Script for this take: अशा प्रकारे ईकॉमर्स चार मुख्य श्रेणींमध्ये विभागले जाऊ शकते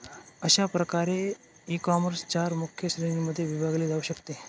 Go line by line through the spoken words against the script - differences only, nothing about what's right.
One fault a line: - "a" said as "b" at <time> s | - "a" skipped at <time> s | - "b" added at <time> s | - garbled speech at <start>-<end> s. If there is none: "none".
none